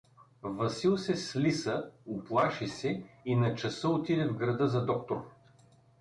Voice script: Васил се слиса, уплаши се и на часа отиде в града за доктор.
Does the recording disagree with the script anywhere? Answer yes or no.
no